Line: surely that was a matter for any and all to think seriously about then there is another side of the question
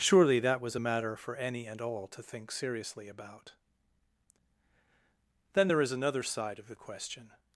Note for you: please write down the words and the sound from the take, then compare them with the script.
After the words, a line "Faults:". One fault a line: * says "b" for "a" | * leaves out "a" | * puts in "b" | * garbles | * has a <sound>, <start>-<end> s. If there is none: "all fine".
surely that was a matter for any and all to think seriously about then there is another side of the question
Faults:
all fine